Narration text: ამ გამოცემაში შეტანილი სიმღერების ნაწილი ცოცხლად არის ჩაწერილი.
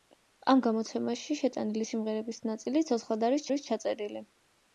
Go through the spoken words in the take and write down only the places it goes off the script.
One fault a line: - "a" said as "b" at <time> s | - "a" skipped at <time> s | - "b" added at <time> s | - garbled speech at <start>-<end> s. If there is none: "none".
- "არის" added at 3.5 s